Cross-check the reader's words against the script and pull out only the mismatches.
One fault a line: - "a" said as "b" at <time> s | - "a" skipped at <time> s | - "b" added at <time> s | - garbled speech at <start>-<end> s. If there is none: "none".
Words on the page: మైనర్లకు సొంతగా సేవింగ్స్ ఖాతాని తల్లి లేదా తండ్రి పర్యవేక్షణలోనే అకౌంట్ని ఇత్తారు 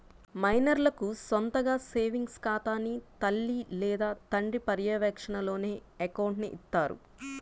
none